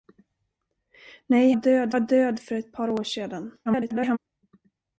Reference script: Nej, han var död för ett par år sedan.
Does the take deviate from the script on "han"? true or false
true